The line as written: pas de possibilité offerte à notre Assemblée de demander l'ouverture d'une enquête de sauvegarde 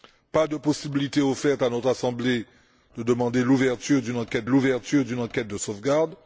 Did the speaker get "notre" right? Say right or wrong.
right